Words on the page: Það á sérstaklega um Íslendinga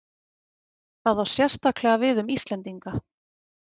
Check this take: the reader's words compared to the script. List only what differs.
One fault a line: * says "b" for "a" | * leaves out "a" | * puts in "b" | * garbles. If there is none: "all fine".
* puts in "við"